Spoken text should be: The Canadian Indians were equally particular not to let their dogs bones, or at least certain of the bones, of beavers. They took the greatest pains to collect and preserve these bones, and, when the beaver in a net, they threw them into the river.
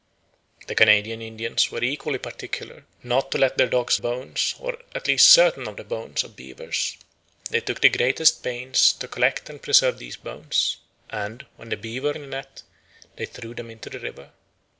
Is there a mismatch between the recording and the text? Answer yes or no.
no